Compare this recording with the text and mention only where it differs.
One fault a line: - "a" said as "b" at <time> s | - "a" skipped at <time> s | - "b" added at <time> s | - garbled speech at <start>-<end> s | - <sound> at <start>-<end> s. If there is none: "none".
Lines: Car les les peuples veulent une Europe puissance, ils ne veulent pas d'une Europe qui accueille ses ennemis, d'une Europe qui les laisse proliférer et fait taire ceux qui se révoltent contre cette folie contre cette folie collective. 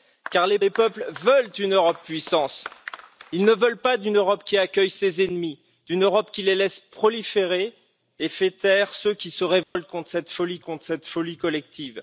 - dropout at 9.6-9.8 s